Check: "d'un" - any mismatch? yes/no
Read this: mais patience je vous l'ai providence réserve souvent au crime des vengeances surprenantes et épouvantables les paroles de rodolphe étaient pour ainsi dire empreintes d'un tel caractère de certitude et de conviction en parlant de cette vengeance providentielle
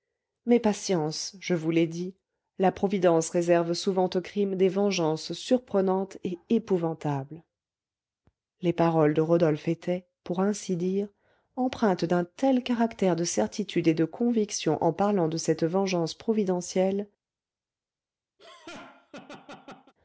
no